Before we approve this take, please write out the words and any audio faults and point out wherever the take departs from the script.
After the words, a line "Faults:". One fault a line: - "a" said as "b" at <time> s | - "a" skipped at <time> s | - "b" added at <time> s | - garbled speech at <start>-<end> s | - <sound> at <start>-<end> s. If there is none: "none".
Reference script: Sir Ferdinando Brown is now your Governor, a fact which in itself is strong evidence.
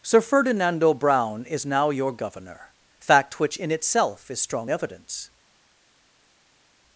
Sir Ferdinando Brown is now your Governor, fact which in itself is strong evidence.
Faults:
- "a" skipped at 2.7 s